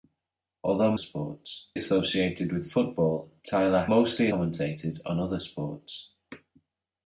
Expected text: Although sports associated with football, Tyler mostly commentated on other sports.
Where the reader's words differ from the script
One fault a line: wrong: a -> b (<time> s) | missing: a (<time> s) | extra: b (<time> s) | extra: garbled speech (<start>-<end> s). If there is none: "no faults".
no faults